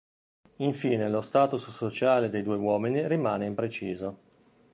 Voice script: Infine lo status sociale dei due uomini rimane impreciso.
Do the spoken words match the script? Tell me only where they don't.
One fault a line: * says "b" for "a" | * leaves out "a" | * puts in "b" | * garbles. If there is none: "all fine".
all fine